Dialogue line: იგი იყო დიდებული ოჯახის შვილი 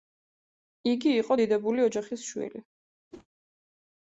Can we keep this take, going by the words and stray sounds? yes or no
no